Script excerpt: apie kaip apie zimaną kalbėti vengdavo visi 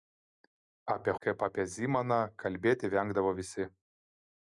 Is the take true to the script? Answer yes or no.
yes